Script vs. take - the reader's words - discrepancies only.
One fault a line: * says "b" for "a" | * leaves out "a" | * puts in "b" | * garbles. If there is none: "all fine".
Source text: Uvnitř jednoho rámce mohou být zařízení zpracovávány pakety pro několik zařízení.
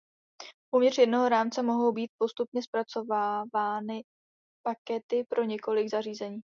* says "postupně" for "zařízení"